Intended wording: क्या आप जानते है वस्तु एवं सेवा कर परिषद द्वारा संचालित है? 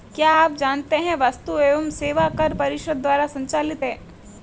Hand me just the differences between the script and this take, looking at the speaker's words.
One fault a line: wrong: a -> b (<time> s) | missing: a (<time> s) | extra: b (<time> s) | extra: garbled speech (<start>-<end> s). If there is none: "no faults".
no faults